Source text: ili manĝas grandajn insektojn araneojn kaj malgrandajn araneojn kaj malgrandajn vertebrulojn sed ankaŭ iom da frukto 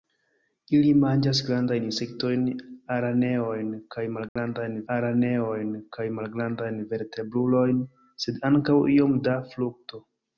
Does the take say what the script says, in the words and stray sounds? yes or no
no